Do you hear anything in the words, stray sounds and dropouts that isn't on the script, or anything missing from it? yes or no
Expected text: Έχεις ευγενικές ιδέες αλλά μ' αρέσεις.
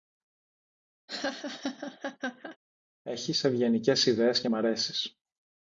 yes